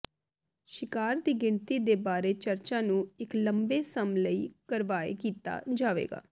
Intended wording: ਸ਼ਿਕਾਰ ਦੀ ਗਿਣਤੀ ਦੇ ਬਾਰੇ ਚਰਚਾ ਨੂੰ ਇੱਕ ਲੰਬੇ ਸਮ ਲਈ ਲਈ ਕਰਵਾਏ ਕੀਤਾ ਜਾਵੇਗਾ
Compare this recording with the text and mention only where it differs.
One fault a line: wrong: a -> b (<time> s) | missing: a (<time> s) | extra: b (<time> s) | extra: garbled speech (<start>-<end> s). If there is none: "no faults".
missing: ਲਈ (4.5 s)